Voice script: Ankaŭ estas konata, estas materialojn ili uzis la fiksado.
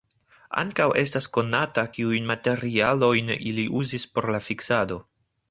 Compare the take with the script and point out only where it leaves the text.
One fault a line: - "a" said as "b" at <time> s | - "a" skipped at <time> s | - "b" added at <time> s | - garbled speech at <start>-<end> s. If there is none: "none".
- "estas" said as "kiujn" at 2.0 s
- "por" added at 4.2 s